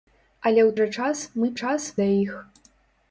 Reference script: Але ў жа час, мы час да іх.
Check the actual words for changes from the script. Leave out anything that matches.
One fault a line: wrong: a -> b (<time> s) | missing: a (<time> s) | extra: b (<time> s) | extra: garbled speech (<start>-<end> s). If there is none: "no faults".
no faults